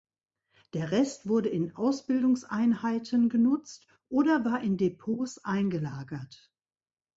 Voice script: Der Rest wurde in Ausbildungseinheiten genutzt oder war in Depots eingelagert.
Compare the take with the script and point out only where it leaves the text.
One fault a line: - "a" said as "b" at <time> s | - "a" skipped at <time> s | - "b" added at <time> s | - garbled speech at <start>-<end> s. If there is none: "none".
none